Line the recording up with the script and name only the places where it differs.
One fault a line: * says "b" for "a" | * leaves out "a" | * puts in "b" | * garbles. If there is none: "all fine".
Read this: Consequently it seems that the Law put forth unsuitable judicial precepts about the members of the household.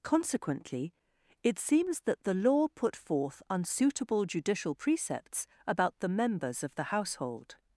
all fine